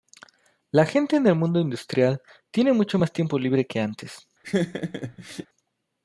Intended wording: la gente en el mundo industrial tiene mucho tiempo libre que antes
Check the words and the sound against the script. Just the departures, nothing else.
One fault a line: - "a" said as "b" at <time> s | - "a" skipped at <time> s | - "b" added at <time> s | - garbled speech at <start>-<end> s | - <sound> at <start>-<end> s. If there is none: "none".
- "más" added at 2.9 s
- laugh at 4.4-5.5 s